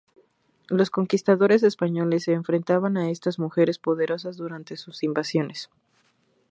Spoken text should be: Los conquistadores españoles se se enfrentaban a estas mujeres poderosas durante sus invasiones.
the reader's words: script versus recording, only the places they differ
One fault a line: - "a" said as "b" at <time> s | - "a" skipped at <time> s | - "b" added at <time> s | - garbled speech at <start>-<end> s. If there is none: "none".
- "se" skipped at 2.3 s